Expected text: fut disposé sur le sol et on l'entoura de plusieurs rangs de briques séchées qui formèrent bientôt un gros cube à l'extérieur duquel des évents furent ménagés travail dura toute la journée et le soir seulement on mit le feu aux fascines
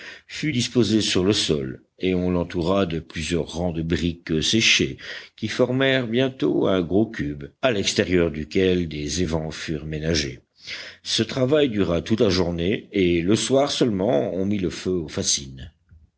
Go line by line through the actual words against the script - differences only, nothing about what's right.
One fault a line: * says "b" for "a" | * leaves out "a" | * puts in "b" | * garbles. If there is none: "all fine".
* puts in "ce"